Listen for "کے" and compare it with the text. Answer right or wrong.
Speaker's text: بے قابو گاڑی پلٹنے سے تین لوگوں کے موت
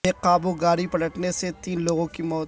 wrong